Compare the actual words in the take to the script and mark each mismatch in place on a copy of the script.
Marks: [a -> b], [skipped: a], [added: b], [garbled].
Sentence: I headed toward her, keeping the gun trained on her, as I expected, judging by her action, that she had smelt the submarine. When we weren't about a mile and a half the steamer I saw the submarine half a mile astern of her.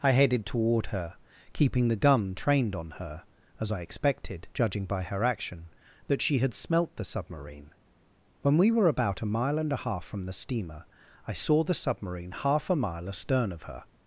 I headed toward her, keeping the gun trained on her, as I expected, judging by her action, that she had smelt the submarine. When we [weren't -> were] about a mile and a half [added: from] the steamer I saw the submarine half a mile astern of her.